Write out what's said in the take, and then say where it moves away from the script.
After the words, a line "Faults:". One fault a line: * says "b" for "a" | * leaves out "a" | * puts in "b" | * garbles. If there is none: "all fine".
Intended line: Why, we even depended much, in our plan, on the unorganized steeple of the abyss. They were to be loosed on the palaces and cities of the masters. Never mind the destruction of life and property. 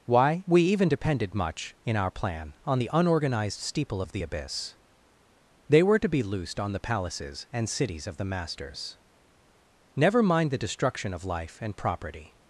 Why, we even depended much, in our plan, on the unorganized steeple of the abyss. They were to be loosed on the palaces and cities of the masters. Never mind the destruction of life and property.
Faults:
all fine